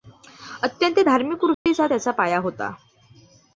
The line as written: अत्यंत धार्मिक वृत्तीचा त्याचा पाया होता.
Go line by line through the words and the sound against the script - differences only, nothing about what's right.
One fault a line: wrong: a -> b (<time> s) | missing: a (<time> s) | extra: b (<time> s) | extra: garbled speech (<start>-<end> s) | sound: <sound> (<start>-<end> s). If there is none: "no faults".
sound: dropout (1.5-1.7 s)